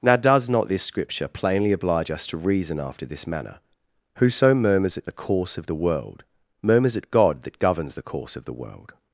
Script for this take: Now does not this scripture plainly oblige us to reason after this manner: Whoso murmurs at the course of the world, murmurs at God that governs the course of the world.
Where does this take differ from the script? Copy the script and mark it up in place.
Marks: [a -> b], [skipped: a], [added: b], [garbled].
Now does not this scripture plainly oblige us to reason after this manner: Whoso murmurs at the course of the world, murmurs at God that governs the course of the world.